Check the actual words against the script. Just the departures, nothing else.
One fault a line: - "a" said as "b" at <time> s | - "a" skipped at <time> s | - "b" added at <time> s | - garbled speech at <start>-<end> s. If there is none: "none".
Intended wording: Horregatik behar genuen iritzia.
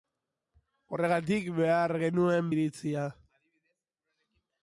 none